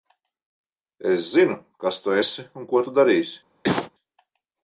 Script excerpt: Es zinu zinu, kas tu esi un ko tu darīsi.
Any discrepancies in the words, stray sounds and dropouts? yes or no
yes